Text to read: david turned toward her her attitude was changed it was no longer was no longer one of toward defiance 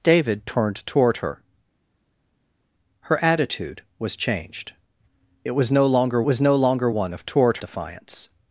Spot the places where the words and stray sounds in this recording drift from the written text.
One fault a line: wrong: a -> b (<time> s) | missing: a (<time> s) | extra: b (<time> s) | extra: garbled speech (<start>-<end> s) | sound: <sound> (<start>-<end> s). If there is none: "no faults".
no faults